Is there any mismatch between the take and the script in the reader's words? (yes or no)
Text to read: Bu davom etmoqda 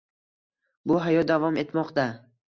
yes